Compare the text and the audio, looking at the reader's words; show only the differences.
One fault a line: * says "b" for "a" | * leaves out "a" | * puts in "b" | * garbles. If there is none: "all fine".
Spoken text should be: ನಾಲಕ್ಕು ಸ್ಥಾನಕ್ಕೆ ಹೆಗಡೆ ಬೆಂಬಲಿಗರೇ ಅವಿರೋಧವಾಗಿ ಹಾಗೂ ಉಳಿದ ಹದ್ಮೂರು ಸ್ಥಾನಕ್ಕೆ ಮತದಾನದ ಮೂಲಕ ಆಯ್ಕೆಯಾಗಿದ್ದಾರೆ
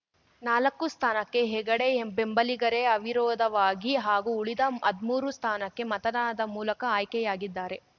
all fine